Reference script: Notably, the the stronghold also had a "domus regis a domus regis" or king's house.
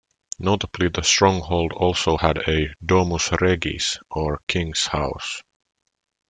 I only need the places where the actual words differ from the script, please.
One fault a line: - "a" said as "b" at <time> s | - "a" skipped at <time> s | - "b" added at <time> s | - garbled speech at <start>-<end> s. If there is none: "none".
- "the" skipped at 1.0 s
- "a domus regis" skipped at 4.0 s